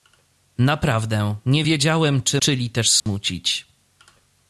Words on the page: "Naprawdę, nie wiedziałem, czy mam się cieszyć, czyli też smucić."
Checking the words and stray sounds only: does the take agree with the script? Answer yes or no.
no